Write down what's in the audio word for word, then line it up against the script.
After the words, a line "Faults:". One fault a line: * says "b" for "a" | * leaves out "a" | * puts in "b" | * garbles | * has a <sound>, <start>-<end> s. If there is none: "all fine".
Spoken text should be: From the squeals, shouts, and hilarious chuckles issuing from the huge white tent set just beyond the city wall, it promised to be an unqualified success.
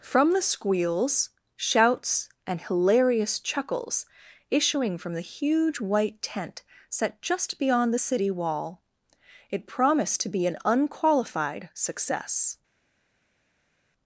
From the squeals, shouts, and hilarious chuckles issuing from the huge white tent set just beyond the city wall, it promised to be an unqualified success.
Faults:
all fine